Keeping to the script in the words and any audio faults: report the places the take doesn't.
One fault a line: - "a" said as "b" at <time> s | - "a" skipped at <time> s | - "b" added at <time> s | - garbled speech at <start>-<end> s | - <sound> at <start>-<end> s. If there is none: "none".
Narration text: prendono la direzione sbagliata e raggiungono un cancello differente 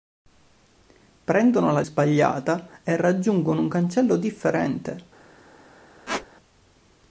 - "direzione" skipped at 1.8 s
- squeak at 6.1-6.3 s